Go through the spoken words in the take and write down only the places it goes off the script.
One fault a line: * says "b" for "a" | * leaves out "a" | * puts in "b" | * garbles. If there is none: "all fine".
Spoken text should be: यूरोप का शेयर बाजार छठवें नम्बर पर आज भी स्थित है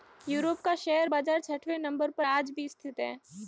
all fine